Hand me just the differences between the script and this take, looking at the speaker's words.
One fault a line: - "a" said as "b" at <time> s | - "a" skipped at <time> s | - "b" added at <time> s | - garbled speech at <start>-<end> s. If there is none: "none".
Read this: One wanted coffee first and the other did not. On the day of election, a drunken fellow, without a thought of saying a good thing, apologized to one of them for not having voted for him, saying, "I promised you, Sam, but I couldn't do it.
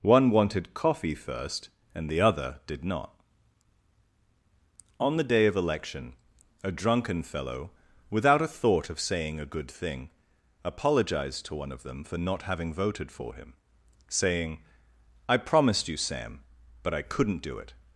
none